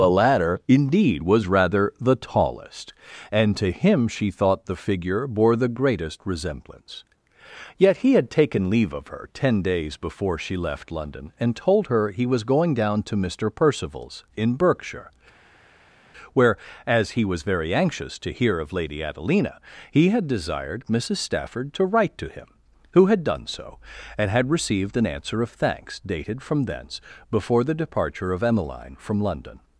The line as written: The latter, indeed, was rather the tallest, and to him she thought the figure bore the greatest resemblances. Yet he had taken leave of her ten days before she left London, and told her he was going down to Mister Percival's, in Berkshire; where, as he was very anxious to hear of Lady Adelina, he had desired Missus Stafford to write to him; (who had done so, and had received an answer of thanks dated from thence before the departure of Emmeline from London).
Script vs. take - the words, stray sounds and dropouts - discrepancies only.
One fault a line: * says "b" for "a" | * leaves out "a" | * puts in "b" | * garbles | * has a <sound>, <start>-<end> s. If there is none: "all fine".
* says "resemblance" for "resemblances"